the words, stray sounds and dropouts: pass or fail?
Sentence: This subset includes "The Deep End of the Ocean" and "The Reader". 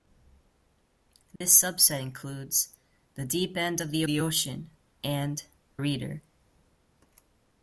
fail